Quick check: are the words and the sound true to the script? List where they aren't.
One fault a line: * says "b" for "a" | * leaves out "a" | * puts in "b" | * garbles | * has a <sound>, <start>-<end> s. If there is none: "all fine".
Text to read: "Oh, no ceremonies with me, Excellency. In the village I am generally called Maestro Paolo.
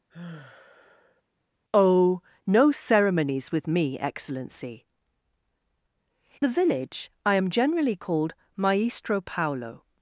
* has a sigh, 0.1-1.2 s
* leaves out "In"